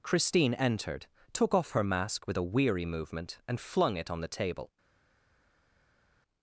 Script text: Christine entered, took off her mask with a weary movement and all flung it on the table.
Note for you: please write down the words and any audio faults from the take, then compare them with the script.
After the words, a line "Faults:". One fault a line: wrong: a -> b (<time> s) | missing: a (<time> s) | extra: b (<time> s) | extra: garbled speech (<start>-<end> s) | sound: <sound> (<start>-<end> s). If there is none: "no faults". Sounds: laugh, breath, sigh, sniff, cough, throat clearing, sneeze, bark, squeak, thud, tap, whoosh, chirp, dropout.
Christine entered, took off her mask with a weary movement and flung it on the table.
Faults:
missing: all (3.6 s)